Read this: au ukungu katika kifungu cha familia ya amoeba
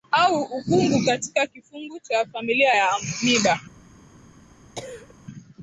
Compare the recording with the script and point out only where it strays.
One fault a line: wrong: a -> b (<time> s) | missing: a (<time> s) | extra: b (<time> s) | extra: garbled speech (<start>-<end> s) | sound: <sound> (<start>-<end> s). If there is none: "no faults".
sound: cough (4.7-5.1 s)